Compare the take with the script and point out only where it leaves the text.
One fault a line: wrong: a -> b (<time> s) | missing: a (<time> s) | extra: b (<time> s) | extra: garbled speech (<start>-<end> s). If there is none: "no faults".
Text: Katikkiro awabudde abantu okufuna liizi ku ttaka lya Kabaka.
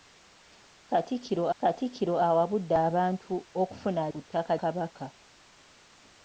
extra: katikkiro (1.6 s)
missing: liizi (4.0 s)
missing: lya (4.5 s)